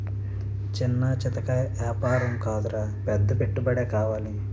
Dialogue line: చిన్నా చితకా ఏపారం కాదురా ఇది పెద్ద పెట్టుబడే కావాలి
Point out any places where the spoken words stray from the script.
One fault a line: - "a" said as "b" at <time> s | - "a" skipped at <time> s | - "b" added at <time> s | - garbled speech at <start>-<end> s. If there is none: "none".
- "ఇది" skipped at 2.8 s